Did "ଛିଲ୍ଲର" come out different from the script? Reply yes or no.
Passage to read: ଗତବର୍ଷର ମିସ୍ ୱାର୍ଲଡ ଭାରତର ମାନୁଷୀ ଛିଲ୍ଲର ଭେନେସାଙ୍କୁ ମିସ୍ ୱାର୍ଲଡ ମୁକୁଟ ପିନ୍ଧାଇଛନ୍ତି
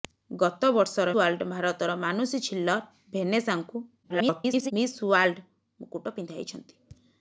no